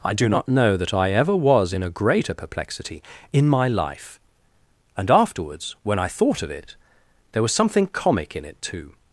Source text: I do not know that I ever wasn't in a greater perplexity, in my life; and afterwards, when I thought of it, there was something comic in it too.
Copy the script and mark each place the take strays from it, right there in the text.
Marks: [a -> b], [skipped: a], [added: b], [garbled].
I do not know that I ever [wasn't -> was] in a greater perplexity, in my life; and afterwards, when I thought of it, there was something comic in it too.